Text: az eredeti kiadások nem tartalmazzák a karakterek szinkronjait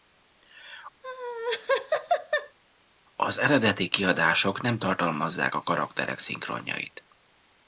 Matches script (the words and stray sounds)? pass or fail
fail